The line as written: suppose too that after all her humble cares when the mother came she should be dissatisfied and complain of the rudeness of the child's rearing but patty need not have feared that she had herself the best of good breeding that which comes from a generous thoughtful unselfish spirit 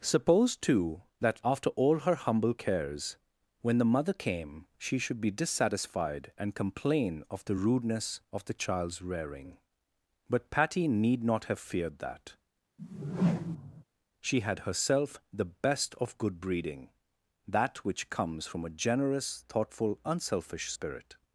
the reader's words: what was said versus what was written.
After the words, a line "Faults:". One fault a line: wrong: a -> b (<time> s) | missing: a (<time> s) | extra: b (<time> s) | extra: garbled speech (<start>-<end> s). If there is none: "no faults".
suppose too that after all her humble cares when the mother came she should be dissatisfied and complain of the rudeness of the child's rearing but patty need not have feared that she had herself the best of good breeding that which comes from a generous thoughtful unselfish spirit
Faults:
no faults